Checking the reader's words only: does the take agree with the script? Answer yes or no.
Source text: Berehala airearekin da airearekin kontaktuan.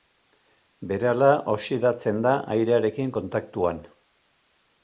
no